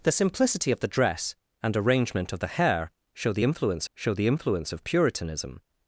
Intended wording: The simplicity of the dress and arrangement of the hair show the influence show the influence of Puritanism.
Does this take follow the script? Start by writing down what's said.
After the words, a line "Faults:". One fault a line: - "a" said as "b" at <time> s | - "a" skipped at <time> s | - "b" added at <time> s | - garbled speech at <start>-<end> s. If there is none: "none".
The simplicity of the dress and arrangement of the hair show the influence show the influence of Puritanism.
Faults:
none